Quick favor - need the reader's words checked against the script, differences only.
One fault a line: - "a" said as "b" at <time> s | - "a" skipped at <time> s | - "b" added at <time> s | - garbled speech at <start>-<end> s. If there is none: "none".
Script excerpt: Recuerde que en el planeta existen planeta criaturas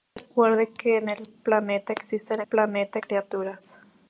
none